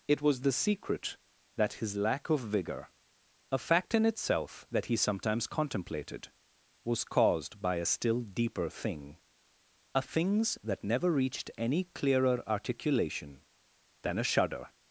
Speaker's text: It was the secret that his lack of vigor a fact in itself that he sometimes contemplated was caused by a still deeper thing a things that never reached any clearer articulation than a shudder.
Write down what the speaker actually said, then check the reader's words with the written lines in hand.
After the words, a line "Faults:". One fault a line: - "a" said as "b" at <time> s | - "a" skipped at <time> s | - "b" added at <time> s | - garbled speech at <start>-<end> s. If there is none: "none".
It was the secret that his lack of vigor a fact in itself that he sometimes contemplated was caused by a still deeper thing a things that never reached any clearer articulation than a shudder.
Faults:
none